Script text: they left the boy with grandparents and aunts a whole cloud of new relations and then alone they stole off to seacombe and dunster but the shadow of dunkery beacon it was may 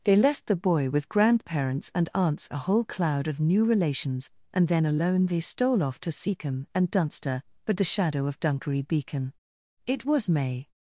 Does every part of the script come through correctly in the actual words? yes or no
yes